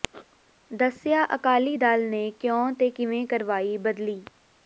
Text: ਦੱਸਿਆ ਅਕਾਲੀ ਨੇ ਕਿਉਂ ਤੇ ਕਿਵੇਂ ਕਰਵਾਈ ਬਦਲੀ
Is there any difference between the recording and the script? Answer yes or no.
yes